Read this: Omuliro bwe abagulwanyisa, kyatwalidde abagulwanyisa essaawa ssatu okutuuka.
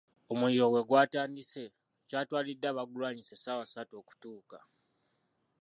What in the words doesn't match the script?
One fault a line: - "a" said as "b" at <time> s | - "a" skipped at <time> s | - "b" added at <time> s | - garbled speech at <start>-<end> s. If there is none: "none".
- "abagulwanyisa" said as "gwatandise" at 0.9 s